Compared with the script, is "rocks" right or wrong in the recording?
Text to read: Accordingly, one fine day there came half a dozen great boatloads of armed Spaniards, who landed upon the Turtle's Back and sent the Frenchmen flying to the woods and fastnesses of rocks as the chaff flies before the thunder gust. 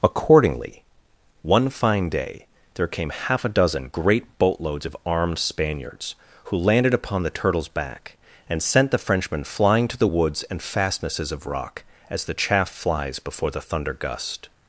wrong